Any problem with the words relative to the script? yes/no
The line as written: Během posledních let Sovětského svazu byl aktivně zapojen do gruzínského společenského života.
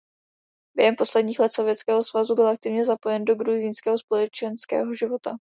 no